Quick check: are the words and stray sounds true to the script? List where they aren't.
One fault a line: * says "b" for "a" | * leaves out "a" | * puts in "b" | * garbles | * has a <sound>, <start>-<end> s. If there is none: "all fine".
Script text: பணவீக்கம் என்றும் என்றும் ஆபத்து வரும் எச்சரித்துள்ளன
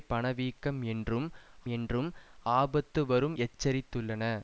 all fine